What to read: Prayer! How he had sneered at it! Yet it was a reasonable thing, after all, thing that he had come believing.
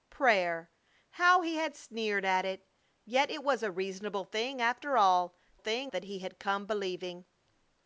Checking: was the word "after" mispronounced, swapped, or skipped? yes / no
no